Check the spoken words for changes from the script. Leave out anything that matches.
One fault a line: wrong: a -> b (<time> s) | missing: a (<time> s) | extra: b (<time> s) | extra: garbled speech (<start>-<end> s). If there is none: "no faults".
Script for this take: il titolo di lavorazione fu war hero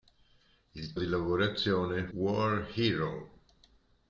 missing: titolo (0.9 s)
missing: fu (2.1 s)